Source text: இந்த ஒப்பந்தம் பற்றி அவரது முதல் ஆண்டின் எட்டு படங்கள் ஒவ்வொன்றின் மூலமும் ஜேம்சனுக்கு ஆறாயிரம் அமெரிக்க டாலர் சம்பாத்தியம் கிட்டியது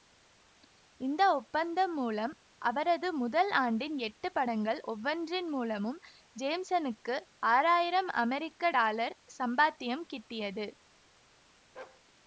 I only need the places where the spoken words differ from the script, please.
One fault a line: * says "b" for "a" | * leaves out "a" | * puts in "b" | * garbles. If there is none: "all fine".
* says "மூலம்" for "பற்றி"